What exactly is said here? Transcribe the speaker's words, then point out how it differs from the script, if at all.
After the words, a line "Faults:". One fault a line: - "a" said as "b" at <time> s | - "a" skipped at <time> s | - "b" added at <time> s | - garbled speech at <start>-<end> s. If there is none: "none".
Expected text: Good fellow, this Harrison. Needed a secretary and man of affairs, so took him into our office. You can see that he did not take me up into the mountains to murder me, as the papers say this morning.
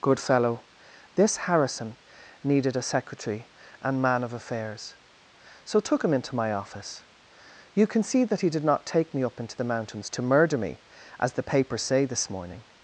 Good fellow, this Harrison. Needed a secretary and man of affairs, so took him into my office. You can see that he did not take me up into the mountains to murder me, as the papers say this morning.
Faults:
- "our" said as "my" at 6.3 s